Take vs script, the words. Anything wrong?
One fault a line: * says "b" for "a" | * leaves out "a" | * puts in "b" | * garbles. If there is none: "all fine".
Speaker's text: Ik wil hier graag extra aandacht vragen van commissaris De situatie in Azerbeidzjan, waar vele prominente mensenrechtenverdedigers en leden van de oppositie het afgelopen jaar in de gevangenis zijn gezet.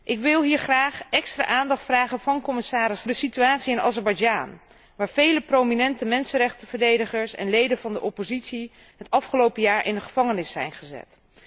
all fine